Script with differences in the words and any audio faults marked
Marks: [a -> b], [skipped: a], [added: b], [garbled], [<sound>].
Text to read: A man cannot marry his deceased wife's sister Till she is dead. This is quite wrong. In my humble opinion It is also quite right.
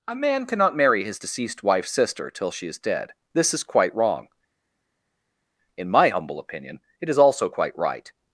A man cannot marry his deceased wife's sister Till she is dead. This is quite wrong. In my humble opinion It is also quite right.